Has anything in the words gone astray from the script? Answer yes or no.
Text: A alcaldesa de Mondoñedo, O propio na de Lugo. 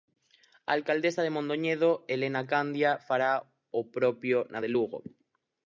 yes